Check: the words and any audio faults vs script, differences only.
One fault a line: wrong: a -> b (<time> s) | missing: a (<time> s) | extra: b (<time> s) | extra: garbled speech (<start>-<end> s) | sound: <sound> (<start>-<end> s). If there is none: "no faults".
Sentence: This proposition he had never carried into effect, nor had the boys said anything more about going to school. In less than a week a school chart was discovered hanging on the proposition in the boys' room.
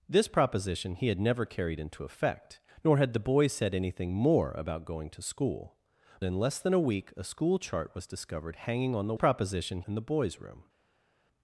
no faults